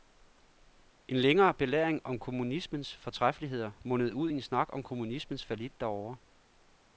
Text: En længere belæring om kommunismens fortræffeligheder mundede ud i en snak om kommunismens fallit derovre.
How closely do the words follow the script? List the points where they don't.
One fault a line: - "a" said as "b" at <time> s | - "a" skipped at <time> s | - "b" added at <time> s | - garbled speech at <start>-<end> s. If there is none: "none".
none